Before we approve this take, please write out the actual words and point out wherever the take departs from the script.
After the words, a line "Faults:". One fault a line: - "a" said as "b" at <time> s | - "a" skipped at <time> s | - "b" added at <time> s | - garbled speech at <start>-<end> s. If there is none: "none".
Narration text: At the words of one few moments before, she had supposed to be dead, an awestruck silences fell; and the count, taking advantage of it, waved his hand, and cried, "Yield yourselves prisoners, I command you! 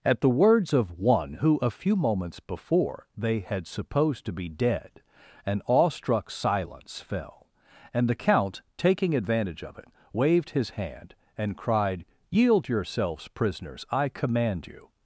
At the words of one who, a few moments before, they had supposed to be dead, an awestruck silence fell; and the count, taking advantage of it, waved his hand, and cried, "Yield yourselves prisoners, I command you!
Faults:
- "who a" added at 1.4 s
- "she" said as "they" at 3.1 s
- "silences" said as "silence" at 6.3 s